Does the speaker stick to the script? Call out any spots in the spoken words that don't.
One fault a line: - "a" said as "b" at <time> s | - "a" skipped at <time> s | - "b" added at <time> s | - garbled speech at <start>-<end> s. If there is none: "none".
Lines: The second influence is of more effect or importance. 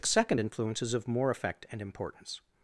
- "or" said as "and" at 1.7 s